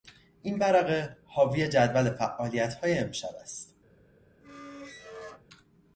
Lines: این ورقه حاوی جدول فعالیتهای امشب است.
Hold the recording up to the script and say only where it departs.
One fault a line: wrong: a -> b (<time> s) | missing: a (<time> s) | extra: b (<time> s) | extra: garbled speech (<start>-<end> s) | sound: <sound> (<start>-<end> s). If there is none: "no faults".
sound: squeak (4.4-5.4 s)